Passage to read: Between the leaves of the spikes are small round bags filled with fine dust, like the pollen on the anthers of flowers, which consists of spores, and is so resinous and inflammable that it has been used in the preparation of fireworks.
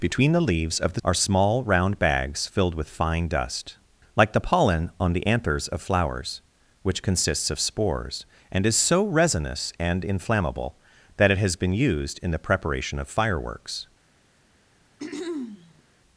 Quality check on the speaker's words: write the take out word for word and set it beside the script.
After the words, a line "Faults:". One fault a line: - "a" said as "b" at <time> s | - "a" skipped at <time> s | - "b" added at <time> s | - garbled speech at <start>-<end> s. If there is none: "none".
Between the leaves of the are small round bags filled with fine dust, like the pollen on the anthers of flowers, which consists of spores, and is so resinous and inflammable that it has been used in the preparation of fireworks.
Faults:
- "spikes" skipped at 1.0 s